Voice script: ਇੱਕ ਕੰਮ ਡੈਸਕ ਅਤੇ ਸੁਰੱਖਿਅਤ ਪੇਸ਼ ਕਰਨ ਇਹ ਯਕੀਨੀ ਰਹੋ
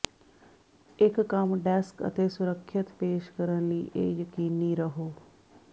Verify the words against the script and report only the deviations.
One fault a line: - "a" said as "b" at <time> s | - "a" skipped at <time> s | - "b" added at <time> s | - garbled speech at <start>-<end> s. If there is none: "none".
- "ਲਈ" added at 3.7 s